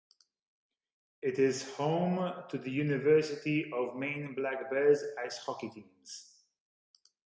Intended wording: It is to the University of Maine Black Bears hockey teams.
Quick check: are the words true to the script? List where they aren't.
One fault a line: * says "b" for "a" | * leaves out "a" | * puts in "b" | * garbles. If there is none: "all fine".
* puts in "home"
* puts in "ice"